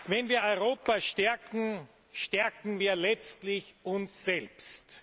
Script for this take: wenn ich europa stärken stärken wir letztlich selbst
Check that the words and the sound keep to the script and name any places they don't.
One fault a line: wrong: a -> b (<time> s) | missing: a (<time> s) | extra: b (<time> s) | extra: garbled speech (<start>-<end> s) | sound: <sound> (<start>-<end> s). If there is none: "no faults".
wrong: ich -> wir (0.3 s)
extra: uns (3.8 s)